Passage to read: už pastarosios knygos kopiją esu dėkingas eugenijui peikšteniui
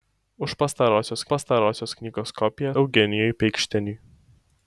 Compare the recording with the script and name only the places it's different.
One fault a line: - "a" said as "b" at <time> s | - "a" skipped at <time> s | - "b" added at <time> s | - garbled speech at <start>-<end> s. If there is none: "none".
- "pastarosios" added at 1.3 s
- "esu dėkingas" skipped at 2.7 s